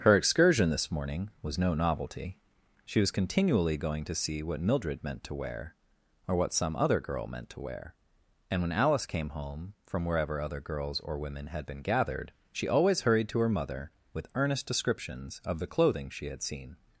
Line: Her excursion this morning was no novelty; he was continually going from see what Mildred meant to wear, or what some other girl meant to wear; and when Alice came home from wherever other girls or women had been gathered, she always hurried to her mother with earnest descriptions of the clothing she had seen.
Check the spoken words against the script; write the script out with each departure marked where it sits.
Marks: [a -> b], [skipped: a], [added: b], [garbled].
Her excursion this morning was no novelty; [he -> she] was continually going [from -> to] see what Mildred meant to wear, or what some other girl meant to wear; and when Alice came home from wherever other girls or women had been gathered, she always hurried to her mother with earnest descriptions of the clothing she had seen.